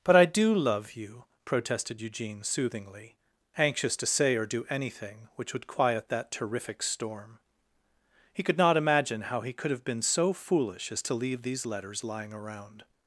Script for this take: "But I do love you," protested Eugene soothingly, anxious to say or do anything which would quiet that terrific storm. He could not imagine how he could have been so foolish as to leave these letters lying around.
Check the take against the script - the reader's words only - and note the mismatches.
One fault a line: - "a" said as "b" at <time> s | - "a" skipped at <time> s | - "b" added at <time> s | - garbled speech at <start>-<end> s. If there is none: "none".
none